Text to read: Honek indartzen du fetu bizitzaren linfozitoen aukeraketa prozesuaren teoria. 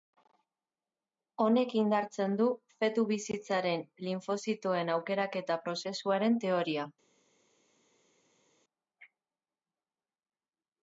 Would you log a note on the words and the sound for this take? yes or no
no